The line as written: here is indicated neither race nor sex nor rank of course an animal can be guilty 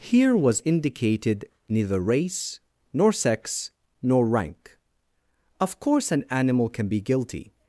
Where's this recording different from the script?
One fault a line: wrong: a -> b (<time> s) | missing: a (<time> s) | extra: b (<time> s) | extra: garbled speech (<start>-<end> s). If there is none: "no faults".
wrong: is -> was (0.3 s)